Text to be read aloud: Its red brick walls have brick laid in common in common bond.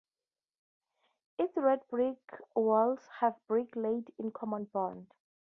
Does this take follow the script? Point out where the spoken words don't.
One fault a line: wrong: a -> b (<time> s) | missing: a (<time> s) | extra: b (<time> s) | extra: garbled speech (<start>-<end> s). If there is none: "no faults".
missing: in common (4.7 s)